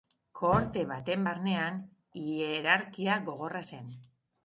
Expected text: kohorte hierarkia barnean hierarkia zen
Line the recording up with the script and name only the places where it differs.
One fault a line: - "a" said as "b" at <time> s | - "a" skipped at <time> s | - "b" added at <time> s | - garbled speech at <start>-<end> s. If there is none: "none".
- "hierarkia" said as "baten" at 0.9 s
- "gogorra" added at 3.3 s